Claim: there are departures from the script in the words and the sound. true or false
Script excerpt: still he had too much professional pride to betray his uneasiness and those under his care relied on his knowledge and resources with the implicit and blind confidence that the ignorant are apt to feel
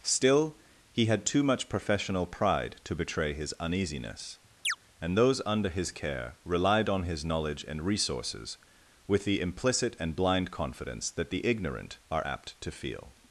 true